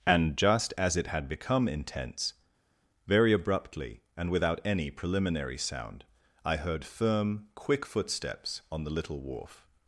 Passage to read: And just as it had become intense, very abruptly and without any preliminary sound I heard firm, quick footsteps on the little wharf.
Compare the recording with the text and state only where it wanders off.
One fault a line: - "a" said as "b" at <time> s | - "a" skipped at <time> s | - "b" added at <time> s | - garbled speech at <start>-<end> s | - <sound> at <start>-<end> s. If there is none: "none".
none